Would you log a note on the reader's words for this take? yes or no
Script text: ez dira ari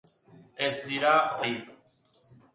no